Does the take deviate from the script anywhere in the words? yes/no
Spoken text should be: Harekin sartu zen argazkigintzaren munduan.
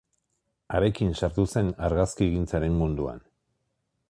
no